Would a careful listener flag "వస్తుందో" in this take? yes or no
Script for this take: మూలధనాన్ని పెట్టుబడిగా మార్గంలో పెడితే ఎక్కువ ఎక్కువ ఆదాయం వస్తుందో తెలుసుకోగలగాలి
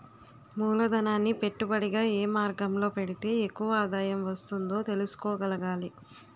no